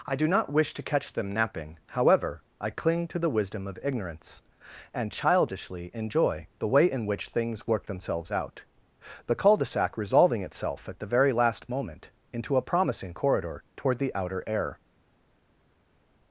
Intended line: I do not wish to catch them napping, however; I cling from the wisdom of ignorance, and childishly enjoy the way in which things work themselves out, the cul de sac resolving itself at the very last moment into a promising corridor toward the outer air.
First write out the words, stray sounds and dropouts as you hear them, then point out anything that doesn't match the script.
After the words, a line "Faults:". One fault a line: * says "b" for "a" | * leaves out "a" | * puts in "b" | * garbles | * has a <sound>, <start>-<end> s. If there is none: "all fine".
I do not wish to catch them napping, however; I cling to the wisdom of ignorance, and childishly enjoy the way in which things work themselves out, the cul de sac resolving itself at the very last moment into a promising corridor toward the outer air.
Faults:
* says "to" for "from"